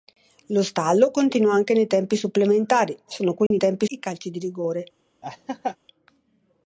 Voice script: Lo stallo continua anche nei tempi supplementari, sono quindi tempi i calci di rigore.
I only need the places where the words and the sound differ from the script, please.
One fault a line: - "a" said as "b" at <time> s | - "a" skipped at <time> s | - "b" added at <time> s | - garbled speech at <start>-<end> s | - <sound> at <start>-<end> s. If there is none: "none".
- dropout at 3.5-3.5 s
- laugh at 5.2-5.8 s